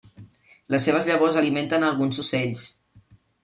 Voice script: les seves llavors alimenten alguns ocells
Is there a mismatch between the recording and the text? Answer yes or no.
no